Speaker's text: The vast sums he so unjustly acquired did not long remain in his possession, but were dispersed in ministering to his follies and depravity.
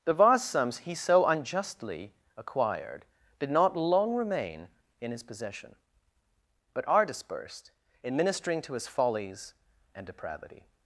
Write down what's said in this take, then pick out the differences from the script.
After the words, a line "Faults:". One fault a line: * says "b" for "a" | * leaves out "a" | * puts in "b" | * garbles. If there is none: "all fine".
The vast sums he so unjustly acquired did not long remain in his possession, but are dispersed in ministering to his follies and depravity.
Faults:
* says "are" for "were"